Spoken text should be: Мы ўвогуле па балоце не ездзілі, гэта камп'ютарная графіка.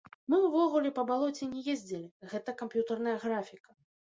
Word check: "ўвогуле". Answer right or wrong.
right